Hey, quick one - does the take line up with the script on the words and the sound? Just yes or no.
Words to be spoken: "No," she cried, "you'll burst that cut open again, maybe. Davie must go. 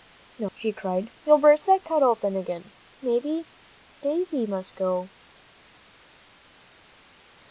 yes